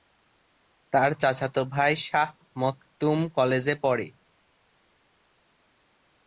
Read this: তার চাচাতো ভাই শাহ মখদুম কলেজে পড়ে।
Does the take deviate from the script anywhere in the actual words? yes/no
no